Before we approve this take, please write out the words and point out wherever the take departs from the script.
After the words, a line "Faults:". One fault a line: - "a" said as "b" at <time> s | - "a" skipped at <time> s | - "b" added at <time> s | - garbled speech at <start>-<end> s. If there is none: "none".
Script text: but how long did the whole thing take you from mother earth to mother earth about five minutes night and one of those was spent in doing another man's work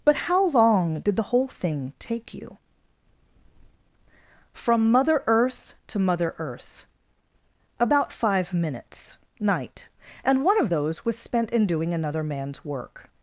but how long did the whole thing take you from mother earth to mother earth about five minutes night and one of those was spent in doing another man's work
Faults:
none